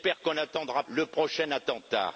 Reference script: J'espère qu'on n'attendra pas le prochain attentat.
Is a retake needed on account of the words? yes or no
yes